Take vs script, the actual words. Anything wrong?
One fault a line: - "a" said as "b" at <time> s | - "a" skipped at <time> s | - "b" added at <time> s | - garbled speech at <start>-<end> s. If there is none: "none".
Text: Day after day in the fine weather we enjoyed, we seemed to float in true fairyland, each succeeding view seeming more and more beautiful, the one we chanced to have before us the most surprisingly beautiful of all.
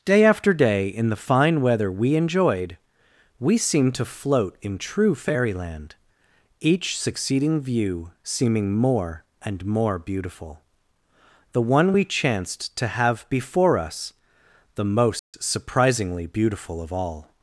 none